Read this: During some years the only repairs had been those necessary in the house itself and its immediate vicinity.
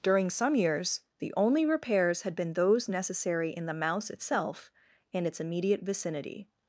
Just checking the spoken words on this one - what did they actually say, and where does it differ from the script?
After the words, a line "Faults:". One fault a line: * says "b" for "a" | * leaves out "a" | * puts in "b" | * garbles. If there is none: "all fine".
During some years the only repairs had been those necessary in the mouse itself and its immediate vicinity.
Faults:
* says "mouse" for "house"